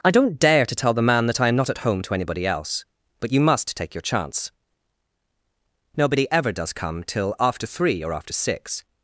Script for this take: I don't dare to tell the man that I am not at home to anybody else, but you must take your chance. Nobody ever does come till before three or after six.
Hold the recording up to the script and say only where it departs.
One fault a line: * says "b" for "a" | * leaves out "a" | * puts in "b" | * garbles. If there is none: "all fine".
* says "after" for "before"